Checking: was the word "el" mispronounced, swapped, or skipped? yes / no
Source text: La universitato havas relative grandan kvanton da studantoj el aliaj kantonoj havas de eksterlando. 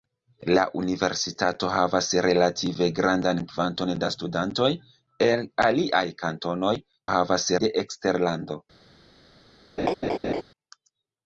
no